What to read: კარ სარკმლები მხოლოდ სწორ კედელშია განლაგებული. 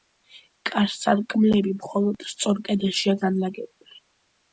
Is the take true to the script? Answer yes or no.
yes